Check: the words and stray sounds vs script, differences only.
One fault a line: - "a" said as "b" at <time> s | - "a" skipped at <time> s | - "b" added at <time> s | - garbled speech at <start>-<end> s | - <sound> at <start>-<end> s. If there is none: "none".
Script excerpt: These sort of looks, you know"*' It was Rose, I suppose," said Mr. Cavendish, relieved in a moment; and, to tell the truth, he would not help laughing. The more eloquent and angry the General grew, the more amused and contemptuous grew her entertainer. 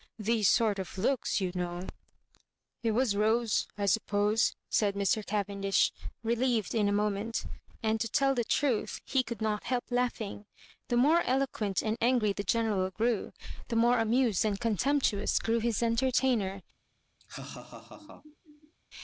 - "would" said as "could" at 9.2 s
- "her" said as "his" at 15.6 s
- laugh at 17.2-18.7 s